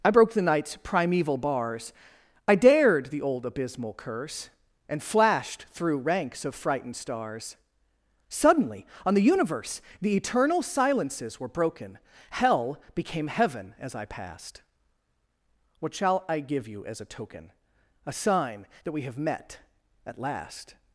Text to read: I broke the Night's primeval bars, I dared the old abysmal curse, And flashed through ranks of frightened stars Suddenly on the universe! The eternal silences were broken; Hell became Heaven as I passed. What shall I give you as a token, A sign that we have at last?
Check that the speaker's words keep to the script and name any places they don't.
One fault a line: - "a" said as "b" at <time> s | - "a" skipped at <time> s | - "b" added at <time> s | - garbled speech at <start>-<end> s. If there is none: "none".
- "met" added at 19.2 s